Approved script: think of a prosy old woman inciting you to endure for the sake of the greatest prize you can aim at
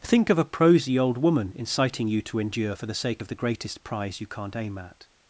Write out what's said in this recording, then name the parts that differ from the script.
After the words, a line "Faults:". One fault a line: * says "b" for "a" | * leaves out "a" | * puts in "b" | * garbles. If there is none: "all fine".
think of a prosy old woman inciting you to endure for the sake of the greatest prize you can't aim at
Faults:
* says "can't" for "can"